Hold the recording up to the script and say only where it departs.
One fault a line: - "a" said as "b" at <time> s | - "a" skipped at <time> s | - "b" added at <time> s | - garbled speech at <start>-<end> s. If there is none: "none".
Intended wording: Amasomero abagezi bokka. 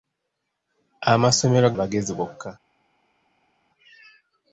none